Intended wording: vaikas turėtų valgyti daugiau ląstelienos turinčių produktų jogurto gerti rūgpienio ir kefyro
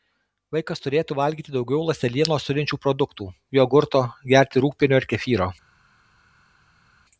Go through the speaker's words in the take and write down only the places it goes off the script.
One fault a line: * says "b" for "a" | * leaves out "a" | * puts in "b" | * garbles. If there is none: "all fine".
all fine